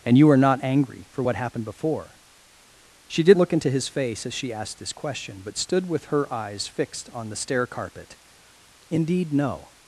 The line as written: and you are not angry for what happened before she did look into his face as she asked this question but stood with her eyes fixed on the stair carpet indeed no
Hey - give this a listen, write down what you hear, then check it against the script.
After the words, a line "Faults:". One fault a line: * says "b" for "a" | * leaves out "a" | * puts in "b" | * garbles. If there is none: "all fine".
and you are not angry for what happened before she did look into his face as she asked this question but stood with her eyes fixed on the stair carpet indeed no
Faults:
all fine